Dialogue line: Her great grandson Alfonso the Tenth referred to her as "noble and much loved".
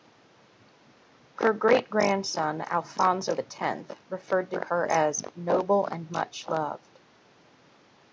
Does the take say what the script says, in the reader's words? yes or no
yes